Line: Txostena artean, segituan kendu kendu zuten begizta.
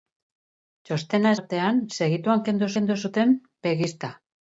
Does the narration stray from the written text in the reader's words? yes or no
no